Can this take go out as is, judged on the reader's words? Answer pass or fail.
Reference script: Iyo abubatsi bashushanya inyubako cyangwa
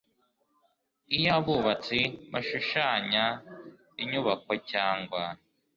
pass